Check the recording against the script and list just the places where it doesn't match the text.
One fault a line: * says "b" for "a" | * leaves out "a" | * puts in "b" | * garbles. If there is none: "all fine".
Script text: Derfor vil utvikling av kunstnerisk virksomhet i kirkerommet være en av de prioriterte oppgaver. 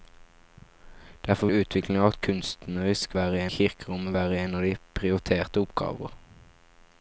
* leaves out "vil"
* says "være" for "virksomhet"